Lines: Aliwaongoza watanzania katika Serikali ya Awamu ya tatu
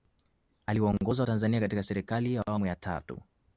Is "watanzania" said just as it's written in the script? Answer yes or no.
yes